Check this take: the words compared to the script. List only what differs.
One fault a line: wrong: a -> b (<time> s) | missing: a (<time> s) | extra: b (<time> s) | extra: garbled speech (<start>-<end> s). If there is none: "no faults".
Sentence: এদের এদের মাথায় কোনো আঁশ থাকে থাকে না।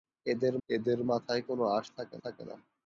no faults